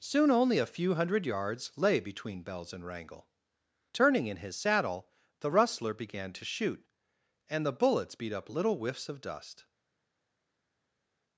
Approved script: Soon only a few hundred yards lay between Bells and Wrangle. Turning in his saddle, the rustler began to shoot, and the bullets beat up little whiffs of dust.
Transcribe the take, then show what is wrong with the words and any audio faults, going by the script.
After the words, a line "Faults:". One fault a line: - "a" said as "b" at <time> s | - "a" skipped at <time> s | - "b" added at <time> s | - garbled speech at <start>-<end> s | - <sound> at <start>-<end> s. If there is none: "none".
Soon only a few hundred yards lay between Bells and Wrangle. Turning in his saddle, the rustler began to shoot, and the bullets beat up little whiffs of dust.
Faults:
none